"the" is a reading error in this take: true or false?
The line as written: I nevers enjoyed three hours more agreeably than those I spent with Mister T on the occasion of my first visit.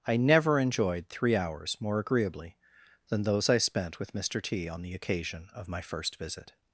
false